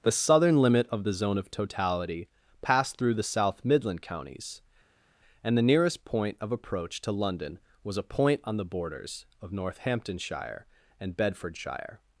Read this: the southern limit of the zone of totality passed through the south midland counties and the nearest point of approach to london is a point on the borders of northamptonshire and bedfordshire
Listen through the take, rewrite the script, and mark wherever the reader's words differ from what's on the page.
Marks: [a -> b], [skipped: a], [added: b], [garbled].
the southern limit of the zone of totality passed through the south midland counties and the nearest point of approach to london [is -> was] a point on the borders of northamptonshire and bedfordshire